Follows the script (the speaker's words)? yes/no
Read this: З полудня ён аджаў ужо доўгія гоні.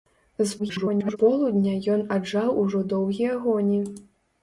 no